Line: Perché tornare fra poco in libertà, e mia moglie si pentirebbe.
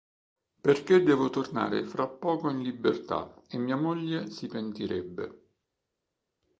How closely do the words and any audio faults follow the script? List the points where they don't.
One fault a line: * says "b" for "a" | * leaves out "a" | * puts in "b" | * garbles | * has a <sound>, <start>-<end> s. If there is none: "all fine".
* puts in "devo"